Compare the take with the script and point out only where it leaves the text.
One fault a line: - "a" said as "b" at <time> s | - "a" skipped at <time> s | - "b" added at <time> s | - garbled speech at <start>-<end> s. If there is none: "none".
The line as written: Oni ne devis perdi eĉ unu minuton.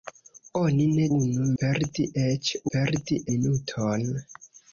- "devis" said as "unu" at 1.2 s
- "unu" said as "perdi" at 2.7 s